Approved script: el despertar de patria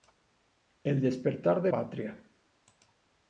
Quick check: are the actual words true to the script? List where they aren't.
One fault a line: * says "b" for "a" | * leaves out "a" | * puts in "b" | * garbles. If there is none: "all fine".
all fine